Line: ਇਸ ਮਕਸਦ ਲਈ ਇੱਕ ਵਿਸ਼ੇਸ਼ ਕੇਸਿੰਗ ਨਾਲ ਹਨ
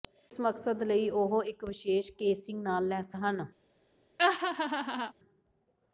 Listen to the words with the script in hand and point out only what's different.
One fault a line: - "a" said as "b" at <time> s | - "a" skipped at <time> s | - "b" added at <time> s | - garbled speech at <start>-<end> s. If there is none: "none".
- "ਉਹ" added at 1.1 s
- "ਲੈਸ" added at 2.9 s